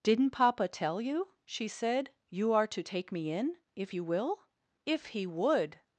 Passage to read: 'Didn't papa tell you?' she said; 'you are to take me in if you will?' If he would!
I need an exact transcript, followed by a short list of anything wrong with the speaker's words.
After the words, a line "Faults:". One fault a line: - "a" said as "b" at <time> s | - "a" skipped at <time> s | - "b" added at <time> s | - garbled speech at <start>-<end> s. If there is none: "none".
'Didn't papa tell you?' she said; 'you are to take me in if you will?' If he would!
Faults:
none